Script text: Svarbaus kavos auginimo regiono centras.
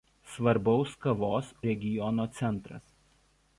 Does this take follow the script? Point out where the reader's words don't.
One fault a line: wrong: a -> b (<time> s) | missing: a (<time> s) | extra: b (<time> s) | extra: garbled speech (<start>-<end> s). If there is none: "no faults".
missing: auginimo (1.5 s)